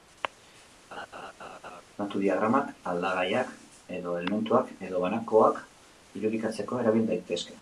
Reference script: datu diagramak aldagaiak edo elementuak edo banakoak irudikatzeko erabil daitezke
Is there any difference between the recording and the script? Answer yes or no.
no